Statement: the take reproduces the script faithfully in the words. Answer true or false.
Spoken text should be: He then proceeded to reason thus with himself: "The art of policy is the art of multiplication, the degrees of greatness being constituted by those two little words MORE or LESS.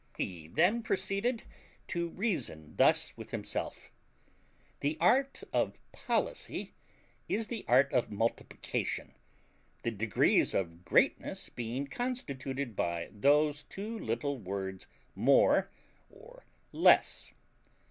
true